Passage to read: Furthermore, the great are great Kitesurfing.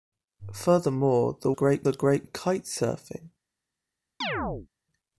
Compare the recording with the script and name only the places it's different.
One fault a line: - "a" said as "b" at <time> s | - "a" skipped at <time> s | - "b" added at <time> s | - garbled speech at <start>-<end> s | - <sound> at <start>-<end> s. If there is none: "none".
- chirp at 4.2-4.7 s